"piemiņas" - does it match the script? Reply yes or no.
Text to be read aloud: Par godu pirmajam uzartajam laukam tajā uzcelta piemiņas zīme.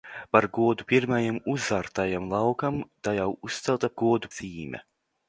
no